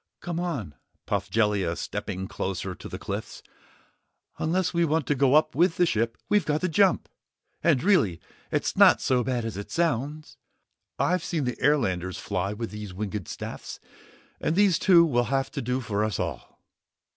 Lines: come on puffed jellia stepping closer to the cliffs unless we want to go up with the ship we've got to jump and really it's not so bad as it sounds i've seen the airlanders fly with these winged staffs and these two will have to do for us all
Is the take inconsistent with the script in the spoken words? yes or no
no